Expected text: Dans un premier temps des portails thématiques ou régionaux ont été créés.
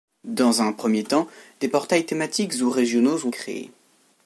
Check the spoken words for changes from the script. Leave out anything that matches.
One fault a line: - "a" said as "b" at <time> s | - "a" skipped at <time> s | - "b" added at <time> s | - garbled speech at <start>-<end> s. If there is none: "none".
- "été" skipped at 3.3 s